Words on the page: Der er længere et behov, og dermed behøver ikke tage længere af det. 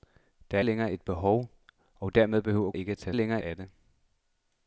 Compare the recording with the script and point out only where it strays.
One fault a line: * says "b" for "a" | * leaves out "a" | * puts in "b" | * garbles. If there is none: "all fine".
all fine